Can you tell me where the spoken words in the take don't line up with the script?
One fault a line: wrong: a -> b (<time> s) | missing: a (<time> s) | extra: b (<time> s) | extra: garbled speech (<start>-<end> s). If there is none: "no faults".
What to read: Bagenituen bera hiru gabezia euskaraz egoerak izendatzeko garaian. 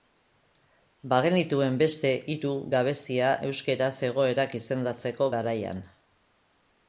wrong: bera -> beste (1.8 s)